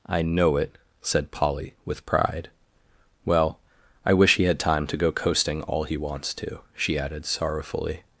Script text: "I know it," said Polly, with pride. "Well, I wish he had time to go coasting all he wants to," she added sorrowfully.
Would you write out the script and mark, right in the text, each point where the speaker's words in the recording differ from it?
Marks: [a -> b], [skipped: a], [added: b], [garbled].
"I know it," said Polly, with pride. "Well, I wish he had time to go coasting all he wants to," she added sorrowfully.